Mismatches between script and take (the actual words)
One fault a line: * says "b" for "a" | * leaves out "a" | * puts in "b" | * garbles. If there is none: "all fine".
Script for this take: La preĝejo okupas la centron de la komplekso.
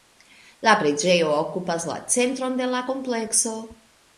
all fine